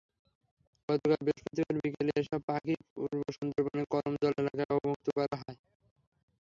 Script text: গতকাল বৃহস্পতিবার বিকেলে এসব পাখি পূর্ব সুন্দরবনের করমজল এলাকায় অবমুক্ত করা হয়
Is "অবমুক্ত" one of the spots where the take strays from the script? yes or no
no